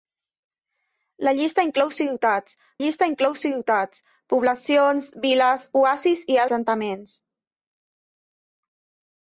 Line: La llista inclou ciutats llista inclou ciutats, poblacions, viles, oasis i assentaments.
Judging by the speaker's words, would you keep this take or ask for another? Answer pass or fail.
pass